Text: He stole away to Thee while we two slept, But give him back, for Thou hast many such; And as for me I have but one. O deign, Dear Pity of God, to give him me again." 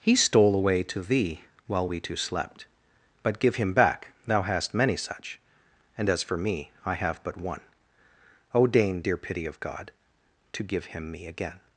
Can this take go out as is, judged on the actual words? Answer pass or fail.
fail